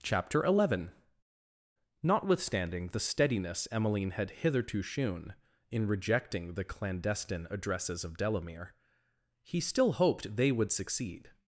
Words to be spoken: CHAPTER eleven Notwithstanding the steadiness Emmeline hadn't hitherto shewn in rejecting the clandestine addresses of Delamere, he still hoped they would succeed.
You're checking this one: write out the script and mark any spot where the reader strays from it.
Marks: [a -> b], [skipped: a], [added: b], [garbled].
CHAPTER eleven Notwithstanding the steadiness Emmeline [hadn't -> had] hitherto shewn in rejecting the clandestine addresses of Delamere, he still hoped they would succeed.